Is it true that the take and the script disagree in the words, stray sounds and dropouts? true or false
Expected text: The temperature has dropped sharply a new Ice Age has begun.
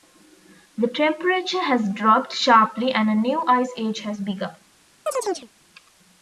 true